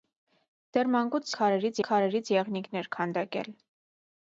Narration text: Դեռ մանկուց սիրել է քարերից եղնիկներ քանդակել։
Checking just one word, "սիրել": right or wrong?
wrong